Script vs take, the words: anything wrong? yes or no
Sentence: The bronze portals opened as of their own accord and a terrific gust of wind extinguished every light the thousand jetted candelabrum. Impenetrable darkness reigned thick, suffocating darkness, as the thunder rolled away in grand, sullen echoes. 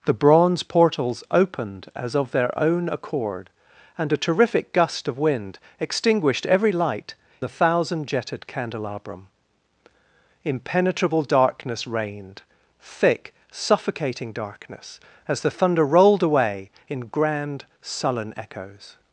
no